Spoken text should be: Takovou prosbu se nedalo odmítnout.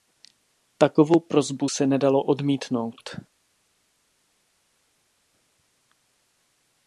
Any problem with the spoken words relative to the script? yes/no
no